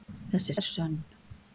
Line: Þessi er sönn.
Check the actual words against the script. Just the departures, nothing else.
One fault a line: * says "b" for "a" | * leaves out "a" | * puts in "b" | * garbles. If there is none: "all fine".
all fine